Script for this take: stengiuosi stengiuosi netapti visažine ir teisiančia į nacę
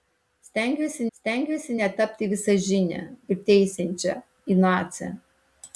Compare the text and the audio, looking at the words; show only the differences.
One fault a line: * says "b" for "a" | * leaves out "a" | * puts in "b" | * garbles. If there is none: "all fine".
all fine